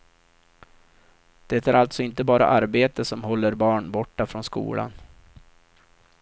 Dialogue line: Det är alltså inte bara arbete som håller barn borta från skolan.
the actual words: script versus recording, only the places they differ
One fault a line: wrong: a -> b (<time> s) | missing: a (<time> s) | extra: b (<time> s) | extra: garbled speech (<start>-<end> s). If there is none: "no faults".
no faults